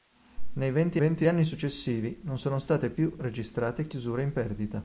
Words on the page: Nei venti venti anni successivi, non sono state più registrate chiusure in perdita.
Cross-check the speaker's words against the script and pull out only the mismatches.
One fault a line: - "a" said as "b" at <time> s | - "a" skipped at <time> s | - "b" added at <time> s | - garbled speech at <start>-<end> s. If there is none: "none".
none